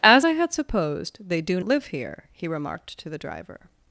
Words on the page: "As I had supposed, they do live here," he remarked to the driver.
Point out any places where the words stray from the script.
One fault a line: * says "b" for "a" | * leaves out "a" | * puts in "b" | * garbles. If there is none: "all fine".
all fine